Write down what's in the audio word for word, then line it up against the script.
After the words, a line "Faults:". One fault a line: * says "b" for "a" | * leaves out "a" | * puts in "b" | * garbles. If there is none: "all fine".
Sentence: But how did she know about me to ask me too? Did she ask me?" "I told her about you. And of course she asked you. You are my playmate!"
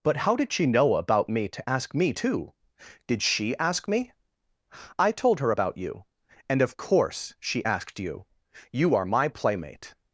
But how did she know about me to ask me too? Did she ask me?" "I told her about you. And of course she asked you. You are my playmate!"
Faults:
all fine